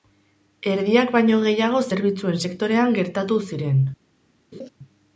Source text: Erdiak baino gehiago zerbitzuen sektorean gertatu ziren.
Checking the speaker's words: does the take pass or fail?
pass